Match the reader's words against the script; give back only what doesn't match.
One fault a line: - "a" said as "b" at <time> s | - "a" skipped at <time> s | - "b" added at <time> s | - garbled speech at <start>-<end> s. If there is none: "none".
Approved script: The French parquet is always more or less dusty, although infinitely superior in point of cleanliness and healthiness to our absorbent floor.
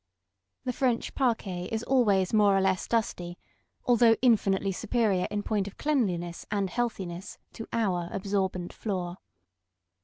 none